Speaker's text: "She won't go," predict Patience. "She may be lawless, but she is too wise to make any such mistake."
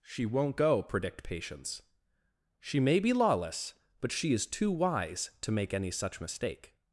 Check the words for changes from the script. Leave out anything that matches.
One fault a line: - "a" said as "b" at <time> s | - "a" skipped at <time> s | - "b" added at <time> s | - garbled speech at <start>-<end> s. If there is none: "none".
none